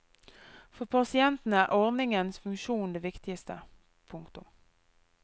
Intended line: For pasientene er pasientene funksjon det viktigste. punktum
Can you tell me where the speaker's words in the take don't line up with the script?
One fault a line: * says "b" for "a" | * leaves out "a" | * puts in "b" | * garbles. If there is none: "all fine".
* says "ordningens" for "pasientene"